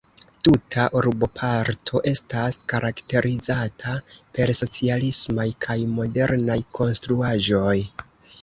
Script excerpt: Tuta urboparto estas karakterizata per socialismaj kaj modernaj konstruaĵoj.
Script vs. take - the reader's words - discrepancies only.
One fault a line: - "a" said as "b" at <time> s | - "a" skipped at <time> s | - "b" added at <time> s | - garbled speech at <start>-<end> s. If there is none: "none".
none